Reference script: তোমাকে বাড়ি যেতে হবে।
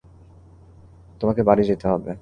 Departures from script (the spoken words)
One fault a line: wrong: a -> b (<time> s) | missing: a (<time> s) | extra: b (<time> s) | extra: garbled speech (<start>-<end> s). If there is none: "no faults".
no faults